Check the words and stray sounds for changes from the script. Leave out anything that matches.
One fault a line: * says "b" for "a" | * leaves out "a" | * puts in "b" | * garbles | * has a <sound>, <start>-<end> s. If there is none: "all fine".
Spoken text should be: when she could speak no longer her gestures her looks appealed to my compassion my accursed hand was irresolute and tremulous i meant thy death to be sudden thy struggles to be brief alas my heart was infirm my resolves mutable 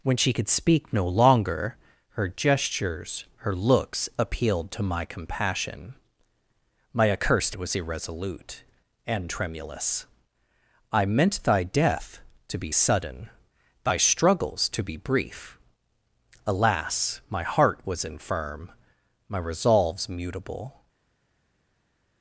* leaves out "hand"